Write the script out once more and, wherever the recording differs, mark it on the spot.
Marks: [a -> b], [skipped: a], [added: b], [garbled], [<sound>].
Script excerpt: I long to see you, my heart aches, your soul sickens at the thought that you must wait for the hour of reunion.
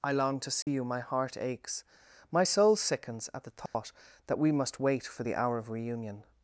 I long to see [dropout] you, my heart aches, [your -> my] soul sickens at the thought [dropout] that [you -> we] must wait for the hour of reunion.